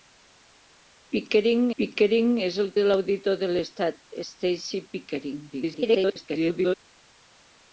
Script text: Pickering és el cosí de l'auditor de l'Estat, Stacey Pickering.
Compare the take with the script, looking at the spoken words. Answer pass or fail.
fail